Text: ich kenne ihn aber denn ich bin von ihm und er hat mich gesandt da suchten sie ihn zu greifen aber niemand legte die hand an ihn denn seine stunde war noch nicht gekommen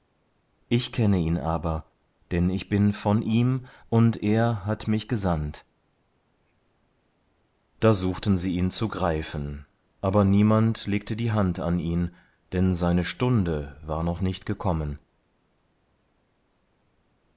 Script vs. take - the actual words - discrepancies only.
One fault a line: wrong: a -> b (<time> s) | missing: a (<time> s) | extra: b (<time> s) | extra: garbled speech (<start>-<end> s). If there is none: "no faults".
no faults